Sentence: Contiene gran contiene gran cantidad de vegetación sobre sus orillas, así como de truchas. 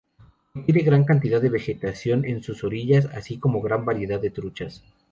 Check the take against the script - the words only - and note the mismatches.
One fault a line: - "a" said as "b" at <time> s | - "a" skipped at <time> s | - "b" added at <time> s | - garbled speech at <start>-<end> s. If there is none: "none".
- "contiene gran" skipped at 1.0 s
- "sobre" said as "en" at 2.2 s
- "gran variedad" added at 3.6 s